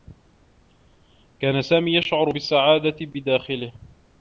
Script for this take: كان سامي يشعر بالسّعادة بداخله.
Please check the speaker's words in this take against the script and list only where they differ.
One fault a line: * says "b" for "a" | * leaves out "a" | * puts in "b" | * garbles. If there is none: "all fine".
all fine